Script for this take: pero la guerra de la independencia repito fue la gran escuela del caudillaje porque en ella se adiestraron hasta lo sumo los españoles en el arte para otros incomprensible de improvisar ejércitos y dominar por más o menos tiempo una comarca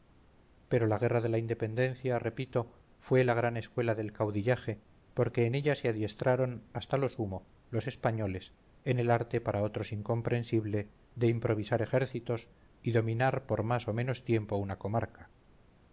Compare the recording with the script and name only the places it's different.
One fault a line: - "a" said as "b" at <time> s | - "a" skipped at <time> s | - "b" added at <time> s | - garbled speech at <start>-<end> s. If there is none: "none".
none